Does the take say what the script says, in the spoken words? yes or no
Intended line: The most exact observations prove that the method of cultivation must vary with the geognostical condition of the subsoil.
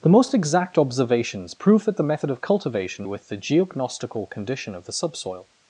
no